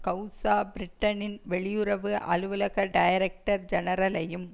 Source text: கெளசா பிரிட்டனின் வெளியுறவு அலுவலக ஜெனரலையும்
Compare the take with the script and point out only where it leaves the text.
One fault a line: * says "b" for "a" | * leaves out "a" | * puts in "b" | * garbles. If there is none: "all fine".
* puts in "டைரக்டர்"